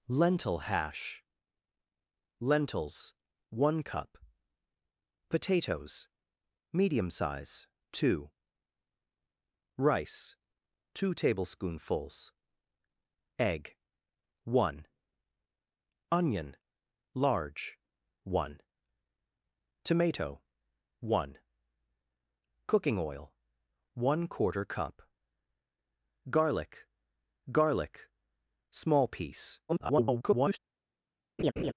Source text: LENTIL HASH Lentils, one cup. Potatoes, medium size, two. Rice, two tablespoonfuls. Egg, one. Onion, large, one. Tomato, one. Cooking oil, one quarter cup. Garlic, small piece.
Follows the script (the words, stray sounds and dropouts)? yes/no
no